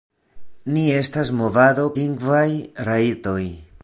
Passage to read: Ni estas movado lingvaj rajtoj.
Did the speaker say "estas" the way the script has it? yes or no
yes